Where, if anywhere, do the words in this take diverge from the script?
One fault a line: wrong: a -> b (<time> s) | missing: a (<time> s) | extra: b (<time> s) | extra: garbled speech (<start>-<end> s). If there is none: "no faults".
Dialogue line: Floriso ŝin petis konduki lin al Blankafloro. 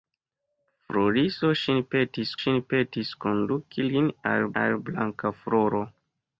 extra: ŝin petis (2.4 s)
extra: al (4.6 s)